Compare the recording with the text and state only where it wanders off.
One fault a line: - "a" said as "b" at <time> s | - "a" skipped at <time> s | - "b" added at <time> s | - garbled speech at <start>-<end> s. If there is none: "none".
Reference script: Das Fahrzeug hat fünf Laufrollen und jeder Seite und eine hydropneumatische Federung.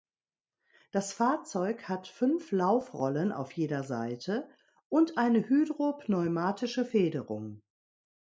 - "und" said as "auf" at 3.3 s